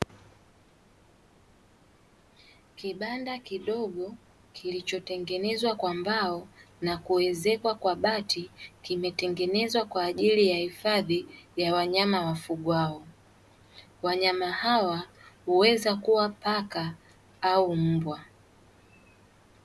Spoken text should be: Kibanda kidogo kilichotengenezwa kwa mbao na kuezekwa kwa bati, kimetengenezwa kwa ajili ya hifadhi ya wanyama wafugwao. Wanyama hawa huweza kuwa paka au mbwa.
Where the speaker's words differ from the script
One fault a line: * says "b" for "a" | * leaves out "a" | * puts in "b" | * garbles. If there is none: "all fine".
all fine